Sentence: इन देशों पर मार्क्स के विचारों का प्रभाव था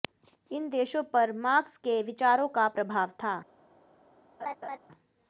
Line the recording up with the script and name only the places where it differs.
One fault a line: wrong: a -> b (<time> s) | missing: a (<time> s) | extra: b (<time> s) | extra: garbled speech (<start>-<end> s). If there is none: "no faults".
no faults